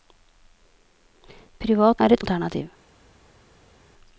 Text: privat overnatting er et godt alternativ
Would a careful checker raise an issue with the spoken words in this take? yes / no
yes